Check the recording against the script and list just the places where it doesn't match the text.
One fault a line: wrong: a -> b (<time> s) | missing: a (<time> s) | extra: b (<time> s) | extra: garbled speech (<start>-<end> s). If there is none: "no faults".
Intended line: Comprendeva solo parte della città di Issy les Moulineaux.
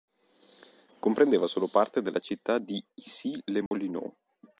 no faults